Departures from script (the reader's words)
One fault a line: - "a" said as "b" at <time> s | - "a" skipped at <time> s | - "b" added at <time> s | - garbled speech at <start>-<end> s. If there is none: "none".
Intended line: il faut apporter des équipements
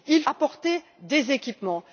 - "faut" skipped at 0.2 s